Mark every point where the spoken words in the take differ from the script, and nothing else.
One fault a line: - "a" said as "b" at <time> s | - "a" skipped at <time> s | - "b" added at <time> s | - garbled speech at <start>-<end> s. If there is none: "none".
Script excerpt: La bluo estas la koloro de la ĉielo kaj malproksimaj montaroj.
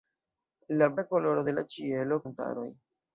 - "bluo estas" skipped at 0.9 s
- "kaj malproksimaj" skipped at 2.2 s